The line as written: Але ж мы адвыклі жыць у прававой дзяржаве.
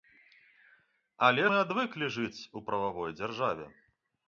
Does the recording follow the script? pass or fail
fail